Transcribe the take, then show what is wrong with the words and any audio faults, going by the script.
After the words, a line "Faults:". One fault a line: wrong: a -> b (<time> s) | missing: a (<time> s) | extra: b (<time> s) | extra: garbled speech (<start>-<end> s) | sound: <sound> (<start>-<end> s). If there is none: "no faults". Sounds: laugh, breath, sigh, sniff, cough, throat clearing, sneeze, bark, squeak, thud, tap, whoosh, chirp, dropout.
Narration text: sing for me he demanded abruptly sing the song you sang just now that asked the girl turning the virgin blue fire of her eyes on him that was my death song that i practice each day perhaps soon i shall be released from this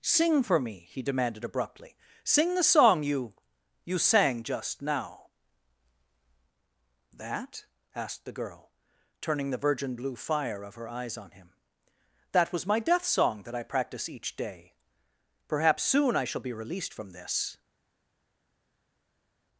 sing for me he demanded abruptly sing the song you you sang just now that asked the girl turning the virgin blue fire of her eyes on him that was my death song that i practice each day perhaps soon i shall be released from this
Faults:
extra: you (3.9 s)